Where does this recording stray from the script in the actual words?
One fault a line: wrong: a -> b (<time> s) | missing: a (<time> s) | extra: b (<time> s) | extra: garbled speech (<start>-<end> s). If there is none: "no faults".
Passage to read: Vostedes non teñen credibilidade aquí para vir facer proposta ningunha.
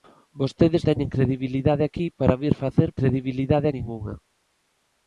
missing: non (0.8 s)
wrong: proposta -> credibilidade (3.0 s)